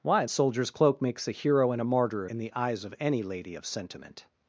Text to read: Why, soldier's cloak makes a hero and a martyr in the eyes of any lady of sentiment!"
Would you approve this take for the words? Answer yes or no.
yes